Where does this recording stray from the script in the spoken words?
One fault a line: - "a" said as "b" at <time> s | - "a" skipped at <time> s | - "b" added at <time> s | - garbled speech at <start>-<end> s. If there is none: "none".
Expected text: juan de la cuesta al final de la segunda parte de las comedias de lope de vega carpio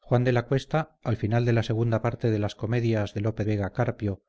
- "de" skipped at 3.4 s